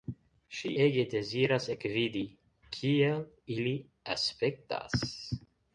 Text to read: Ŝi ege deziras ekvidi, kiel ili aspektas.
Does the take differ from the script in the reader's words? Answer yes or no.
no